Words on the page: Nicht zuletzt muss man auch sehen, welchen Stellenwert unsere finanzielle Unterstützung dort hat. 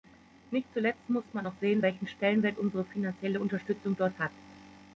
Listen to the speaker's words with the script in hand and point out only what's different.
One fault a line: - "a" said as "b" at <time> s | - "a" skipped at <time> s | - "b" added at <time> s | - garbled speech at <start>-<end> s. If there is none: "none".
none